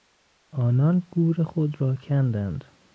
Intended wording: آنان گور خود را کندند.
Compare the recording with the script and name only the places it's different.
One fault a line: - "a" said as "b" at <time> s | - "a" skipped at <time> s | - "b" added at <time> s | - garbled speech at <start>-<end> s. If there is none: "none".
none